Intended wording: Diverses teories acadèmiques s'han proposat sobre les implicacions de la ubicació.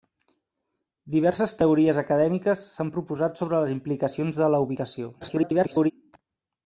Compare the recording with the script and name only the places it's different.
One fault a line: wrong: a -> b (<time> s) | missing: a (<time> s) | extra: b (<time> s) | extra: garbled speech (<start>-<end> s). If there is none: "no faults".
extra: garbled speech (5.2-5.9 s)